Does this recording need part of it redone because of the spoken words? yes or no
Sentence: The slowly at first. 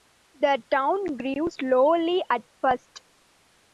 yes